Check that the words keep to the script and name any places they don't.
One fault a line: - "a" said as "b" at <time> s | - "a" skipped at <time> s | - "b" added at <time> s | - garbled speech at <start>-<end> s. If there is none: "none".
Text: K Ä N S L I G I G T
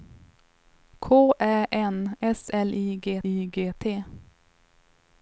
none